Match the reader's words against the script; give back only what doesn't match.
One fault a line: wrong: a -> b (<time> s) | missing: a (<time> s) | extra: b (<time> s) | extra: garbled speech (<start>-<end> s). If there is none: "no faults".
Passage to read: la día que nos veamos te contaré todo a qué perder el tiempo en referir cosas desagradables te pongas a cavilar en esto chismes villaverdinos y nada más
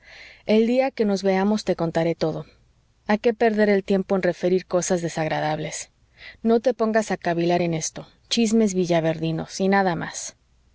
wrong: la -> el (0.5 s)
extra: no (6.4 s)